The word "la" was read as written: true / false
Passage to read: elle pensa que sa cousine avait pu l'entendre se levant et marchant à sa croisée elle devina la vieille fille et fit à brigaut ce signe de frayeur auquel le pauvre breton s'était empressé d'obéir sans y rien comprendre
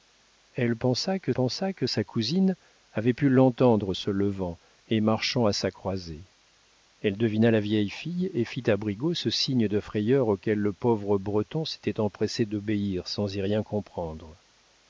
true